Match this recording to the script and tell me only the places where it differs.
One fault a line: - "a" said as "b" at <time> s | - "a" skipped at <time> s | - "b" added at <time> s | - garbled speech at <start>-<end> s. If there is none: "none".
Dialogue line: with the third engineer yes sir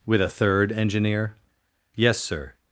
- "the" said as "a" at 0.2 s